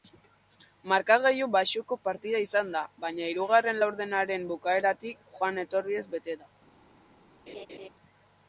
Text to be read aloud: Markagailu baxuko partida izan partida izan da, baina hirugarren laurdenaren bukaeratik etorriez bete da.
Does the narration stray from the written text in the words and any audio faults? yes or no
yes